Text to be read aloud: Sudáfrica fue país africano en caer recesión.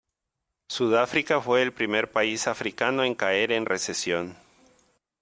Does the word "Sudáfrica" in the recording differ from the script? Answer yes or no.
no